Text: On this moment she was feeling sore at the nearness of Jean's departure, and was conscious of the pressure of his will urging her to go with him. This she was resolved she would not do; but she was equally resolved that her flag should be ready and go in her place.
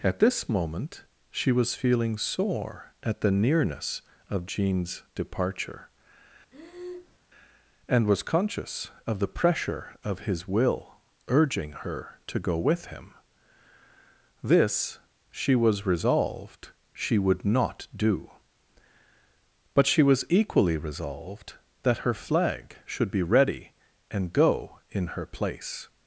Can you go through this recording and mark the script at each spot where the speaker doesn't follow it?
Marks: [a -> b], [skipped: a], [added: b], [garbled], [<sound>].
[On -> At] this moment she was feeling sore at the nearness of Jean's departure, [breath] and was conscious of the pressure of his will urging her to go with him. This she was resolved she would not do; but she was equally resolved that her flag should be ready and go in her place.